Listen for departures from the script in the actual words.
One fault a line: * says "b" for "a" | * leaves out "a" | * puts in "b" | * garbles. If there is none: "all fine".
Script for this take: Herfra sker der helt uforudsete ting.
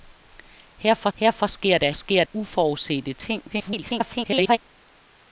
* puts in "herfra"
* says "sker" for "helt"
* garbles